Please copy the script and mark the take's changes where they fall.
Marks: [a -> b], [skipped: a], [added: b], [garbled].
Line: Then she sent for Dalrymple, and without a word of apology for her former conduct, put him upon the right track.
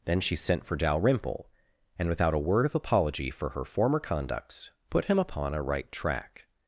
Then she sent for Dalrymple, and without a word of apology for her former [conduct, -> conducts] put him upon [the -> a] right track.